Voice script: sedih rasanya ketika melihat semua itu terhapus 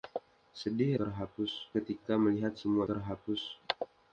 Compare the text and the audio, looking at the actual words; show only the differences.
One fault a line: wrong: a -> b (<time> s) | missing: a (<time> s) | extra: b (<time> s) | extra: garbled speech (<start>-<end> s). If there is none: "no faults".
wrong: rasanya -> terhapus (1.0 s)
missing: itu (2.8 s)